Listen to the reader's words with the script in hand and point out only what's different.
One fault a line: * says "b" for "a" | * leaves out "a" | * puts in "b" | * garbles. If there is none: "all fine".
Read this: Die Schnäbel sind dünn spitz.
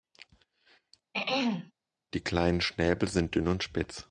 * puts in "kleinen"
* puts in "und"